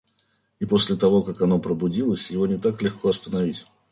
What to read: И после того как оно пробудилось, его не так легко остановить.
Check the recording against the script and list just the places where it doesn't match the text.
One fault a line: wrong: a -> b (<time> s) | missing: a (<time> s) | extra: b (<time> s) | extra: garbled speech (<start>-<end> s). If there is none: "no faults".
no faults